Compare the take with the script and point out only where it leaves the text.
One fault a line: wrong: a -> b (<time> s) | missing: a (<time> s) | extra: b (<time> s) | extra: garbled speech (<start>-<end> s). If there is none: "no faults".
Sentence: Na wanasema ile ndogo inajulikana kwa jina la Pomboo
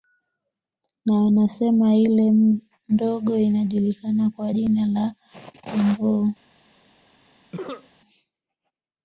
no faults